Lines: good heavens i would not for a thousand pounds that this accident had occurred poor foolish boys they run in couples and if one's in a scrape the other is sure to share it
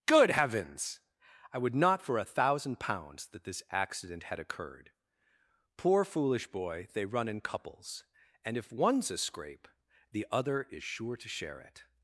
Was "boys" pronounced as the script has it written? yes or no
no